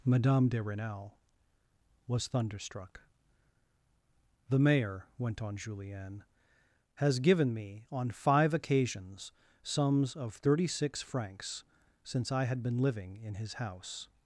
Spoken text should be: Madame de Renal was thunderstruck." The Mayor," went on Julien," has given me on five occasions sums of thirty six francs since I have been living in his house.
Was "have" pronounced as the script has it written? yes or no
no